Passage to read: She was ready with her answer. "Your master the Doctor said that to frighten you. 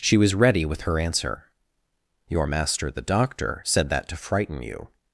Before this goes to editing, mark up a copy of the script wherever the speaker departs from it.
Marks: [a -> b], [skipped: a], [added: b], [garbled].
She was ready with her answer. "Your master the Doctor said that to frighten you.